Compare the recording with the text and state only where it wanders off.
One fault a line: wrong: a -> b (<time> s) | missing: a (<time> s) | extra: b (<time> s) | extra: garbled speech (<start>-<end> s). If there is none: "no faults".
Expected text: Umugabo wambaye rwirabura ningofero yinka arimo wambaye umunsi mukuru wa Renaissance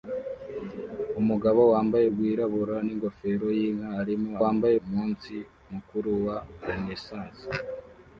no faults